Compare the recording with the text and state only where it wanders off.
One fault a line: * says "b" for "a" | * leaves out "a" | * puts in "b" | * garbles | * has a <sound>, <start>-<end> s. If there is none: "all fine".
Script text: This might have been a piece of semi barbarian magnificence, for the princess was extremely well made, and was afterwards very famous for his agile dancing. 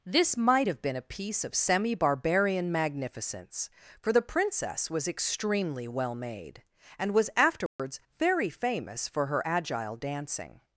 * has a dropout, 7.7-7.8 s
* says "her" for "his"